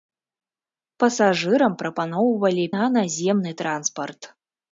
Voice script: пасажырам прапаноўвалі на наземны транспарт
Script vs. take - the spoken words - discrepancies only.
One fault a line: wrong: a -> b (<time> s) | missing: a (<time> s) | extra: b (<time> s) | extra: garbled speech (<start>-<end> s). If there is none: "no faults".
no faults